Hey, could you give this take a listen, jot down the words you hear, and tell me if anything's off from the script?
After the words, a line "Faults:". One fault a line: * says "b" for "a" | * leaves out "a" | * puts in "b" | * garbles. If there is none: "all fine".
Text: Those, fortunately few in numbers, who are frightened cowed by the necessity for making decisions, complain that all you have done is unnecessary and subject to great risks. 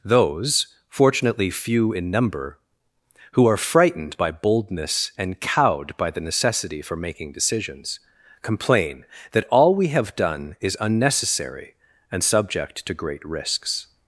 Those, fortunately few in number, who are frightened by boldness and cowed by the necessity for making decisions, complain that all we have done is unnecessary and subject to great risks.
Faults:
* says "number" for "numbers"
* puts in "by boldness and"
* says "we" for "you"